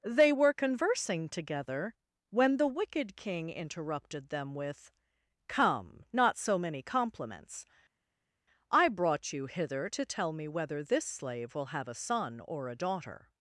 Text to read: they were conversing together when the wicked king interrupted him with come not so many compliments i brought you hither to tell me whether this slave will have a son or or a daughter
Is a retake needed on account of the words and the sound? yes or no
yes